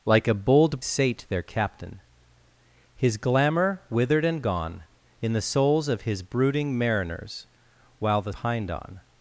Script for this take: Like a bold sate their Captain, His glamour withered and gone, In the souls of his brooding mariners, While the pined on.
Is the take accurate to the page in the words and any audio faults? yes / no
yes